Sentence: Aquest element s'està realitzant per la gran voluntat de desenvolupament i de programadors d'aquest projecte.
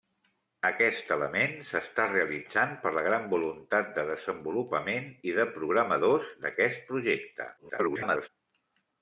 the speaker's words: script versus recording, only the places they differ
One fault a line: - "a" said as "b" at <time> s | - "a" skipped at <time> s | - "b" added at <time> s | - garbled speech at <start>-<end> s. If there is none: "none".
- garbled speech at 7.6-8.3 s